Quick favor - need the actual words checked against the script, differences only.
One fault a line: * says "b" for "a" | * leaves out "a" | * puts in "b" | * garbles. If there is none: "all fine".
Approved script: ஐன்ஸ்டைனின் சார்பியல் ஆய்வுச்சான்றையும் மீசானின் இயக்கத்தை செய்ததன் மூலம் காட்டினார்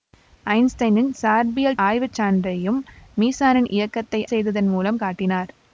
all fine